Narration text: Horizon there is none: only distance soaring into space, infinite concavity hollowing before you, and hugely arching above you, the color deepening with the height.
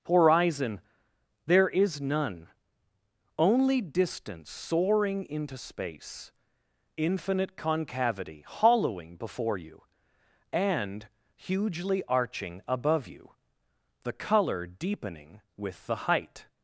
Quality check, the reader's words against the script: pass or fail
pass